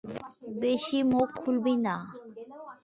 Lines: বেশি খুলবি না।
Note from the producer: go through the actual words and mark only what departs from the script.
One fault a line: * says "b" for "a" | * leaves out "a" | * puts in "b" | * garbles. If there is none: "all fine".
* puts in "মুখ"